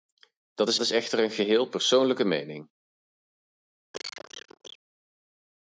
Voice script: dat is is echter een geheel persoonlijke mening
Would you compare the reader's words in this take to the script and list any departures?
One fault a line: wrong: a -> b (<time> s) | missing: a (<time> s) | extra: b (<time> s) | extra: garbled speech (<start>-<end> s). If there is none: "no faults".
no faults